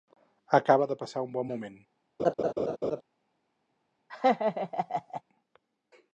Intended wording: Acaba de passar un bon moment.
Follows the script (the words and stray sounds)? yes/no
no